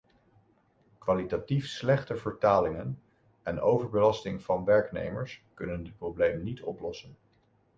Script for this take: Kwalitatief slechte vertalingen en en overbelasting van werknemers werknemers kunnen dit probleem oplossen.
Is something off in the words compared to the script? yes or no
yes